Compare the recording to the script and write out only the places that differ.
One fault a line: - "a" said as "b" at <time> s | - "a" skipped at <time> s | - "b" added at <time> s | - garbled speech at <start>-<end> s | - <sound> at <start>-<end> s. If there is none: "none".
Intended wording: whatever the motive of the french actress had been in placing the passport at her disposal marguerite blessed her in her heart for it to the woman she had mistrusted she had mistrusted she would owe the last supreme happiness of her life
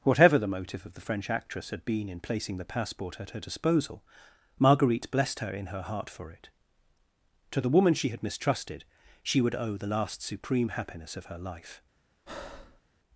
- "had mistrusted she" skipped at 9.4 s
- breath at 12.3-12.8 s